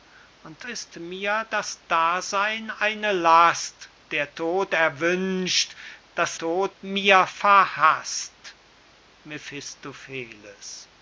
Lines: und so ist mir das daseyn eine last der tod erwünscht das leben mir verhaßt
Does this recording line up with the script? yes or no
no